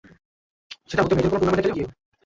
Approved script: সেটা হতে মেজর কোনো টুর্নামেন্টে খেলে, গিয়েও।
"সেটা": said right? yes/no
yes